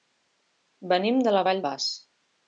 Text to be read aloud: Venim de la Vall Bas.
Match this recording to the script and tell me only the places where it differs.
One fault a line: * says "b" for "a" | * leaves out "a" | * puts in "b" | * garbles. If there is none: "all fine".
all fine